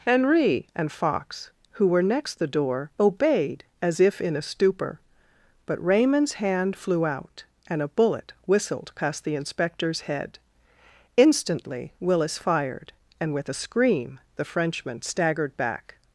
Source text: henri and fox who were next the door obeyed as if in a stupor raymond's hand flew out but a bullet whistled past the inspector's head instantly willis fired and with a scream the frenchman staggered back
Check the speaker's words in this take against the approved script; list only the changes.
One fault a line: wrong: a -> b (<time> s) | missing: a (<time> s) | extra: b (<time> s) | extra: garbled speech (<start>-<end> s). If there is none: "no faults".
extra: but (5.7 s)
wrong: but -> and (7.7 s)